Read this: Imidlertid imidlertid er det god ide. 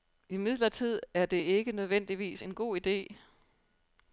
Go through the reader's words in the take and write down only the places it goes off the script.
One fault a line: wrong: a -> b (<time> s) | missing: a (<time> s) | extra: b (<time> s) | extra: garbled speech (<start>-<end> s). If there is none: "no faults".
missing: imidlertid (1.0 s)
extra: ikke nødvendigvis en (1.4 s)